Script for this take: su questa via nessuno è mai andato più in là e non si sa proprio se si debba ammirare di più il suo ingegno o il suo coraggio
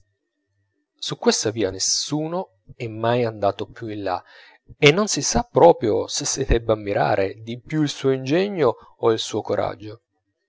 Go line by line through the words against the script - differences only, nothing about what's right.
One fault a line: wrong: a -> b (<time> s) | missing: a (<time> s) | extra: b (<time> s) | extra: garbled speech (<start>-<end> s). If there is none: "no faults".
no faults